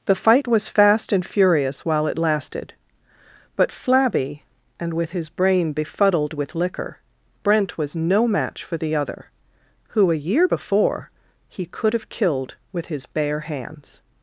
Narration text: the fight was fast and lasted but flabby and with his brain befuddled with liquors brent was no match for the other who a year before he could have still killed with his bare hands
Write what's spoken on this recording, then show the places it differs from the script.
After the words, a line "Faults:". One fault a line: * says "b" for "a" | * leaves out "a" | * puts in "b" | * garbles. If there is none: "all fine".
the fight was fast and furious while it lasted but flabby and with his brain befuddled with liquor brent was no match for the other who a year before he could have killed with his bare hands
Faults:
* puts in "furious while it"
* says "liquor" for "liquors"
* leaves out "still"